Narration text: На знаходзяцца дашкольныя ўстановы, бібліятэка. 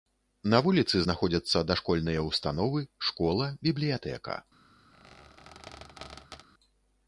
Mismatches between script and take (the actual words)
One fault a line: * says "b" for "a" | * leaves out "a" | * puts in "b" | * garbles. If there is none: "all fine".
* puts in "вуліцы"
* puts in "школа"